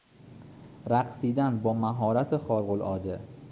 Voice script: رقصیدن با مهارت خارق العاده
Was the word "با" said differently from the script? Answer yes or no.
no